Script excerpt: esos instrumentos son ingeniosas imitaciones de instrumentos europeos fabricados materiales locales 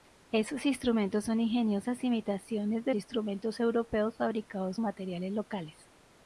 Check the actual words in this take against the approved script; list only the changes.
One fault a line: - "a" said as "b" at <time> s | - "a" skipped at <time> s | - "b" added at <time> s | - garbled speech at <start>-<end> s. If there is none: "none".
none